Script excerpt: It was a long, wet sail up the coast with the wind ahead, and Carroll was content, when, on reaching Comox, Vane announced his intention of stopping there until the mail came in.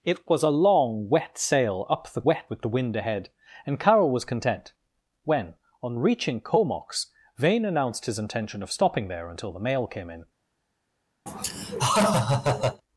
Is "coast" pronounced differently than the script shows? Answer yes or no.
yes